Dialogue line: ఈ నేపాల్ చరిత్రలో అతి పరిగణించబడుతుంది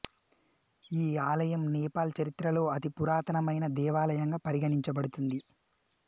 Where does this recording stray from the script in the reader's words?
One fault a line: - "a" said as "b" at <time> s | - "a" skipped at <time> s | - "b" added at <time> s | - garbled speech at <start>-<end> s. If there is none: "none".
- "ఆలయం" added at 1.2 s
- "పురాతనమైన దేవాలయంగా" added at 2.9 s